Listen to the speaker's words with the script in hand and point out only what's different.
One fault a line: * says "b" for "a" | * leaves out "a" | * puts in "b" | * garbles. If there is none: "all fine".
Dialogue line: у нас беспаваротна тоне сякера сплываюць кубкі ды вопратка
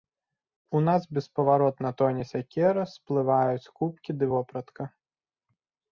all fine